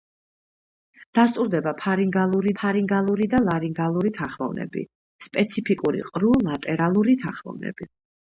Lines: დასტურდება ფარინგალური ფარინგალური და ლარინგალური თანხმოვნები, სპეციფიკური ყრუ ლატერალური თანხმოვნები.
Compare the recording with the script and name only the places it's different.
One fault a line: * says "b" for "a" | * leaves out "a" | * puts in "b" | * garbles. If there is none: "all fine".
all fine